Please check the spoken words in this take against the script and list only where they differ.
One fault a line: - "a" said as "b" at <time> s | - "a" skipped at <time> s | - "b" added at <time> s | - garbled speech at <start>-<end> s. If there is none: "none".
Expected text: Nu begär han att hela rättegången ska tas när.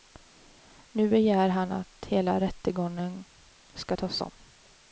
- "när" said as "om" at 4.2 s